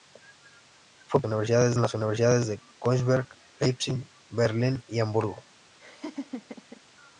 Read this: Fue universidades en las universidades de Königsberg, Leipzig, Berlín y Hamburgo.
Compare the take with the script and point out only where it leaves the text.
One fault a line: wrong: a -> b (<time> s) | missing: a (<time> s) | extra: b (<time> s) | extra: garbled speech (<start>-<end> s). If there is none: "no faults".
no faults